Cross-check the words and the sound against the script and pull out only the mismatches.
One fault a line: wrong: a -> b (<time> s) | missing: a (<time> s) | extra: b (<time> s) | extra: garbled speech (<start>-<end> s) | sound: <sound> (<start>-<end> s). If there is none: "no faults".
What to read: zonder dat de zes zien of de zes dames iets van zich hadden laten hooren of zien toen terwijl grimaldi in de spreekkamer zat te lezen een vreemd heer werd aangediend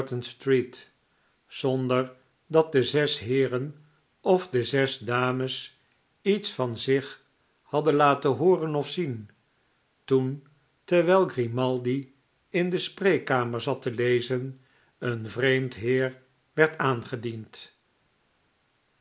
wrong: zien -> heeren (3.2 s)